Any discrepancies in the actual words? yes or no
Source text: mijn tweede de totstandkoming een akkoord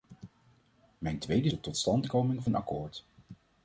no